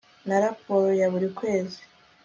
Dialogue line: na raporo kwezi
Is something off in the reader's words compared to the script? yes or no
yes